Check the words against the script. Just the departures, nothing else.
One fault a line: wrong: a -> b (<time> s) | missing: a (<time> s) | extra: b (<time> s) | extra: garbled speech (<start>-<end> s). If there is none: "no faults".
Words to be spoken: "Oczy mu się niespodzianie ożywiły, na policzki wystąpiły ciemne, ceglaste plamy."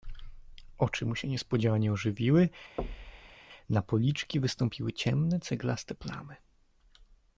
no faults